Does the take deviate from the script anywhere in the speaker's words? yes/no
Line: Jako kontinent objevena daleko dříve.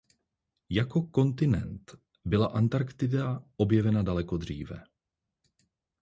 yes